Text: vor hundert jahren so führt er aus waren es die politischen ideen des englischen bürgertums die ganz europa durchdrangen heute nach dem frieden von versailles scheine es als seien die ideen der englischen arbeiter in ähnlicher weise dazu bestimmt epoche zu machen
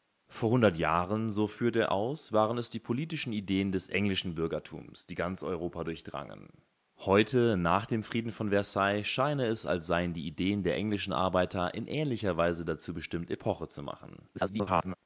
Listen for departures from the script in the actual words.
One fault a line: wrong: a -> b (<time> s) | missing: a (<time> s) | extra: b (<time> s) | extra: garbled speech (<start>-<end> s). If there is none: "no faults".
extra: garbled speech (14.3-15.0 s)